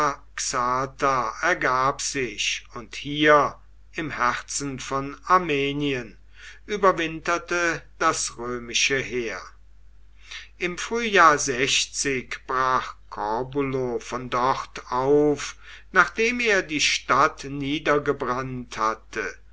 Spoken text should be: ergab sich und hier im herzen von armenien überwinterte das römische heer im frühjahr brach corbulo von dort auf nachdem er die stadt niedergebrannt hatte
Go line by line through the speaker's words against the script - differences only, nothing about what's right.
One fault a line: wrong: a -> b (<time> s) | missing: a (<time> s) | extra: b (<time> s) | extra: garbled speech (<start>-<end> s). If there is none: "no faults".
no faults